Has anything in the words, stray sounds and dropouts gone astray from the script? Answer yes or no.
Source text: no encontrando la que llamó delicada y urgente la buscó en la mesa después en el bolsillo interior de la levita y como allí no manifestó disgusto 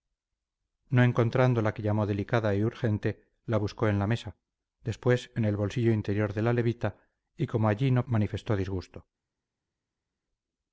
no